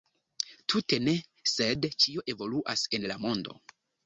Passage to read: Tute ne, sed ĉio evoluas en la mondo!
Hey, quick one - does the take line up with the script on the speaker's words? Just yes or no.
yes